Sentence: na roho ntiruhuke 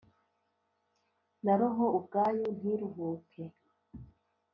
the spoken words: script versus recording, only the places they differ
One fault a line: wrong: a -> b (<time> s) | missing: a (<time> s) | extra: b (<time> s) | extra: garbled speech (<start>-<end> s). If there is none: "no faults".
extra: ubwayo (2.0 s)